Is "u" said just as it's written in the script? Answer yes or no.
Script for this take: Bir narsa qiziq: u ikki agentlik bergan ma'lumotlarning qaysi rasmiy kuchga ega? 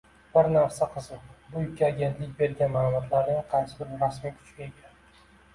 no